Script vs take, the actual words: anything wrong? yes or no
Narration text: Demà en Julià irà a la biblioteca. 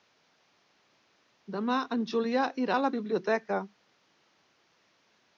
no